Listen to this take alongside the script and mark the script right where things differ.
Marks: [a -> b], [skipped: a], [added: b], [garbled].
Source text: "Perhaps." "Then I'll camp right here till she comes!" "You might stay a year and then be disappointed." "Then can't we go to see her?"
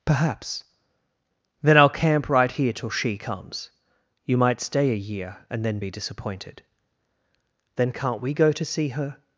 "Perhaps." "Then I'll camp right here till she comes!" "You might stay a year and then be disappointed." "Then can't we go to see her?"